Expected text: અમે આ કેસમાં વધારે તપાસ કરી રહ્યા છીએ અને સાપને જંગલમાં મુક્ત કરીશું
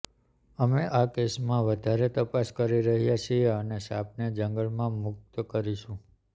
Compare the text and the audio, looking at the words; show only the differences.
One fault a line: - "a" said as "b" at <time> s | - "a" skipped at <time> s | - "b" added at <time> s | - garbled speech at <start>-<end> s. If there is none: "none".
none